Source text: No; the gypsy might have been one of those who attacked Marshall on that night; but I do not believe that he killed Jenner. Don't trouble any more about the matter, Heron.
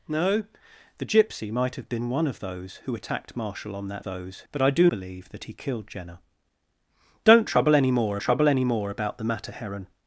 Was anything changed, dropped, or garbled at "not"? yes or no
yes